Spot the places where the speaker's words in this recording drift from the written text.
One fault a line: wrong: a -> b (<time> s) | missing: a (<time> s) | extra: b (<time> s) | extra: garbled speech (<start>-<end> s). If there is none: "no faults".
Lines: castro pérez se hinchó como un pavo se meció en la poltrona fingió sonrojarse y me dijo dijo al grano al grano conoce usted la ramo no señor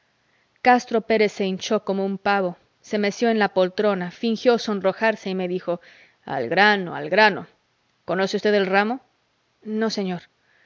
missing: dijo (5.8 s)
wrong: la -> el (8.5 s)